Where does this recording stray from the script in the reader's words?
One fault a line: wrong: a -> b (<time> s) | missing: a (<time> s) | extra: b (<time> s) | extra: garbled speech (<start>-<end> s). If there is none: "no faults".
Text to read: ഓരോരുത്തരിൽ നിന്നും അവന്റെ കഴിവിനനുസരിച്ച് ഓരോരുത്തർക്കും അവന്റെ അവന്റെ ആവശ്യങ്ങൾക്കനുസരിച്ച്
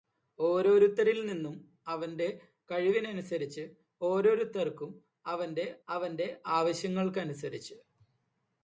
no faults